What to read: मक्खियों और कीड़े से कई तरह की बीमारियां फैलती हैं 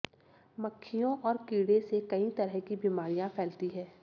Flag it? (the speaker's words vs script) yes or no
no